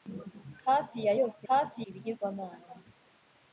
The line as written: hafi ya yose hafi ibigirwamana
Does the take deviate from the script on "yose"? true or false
false